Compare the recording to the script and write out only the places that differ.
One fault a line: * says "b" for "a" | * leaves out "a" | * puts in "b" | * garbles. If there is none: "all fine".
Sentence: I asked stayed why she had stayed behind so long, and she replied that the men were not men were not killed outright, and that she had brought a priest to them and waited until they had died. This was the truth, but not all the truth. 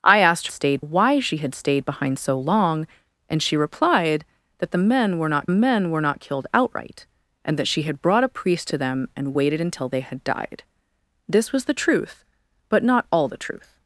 all fine